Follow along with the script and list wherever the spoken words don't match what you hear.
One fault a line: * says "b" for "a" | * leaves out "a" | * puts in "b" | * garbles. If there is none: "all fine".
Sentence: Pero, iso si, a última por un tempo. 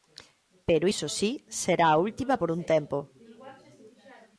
* puts in "será"